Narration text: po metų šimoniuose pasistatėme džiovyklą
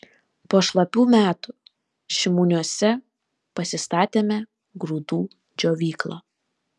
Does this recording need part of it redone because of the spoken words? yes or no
yes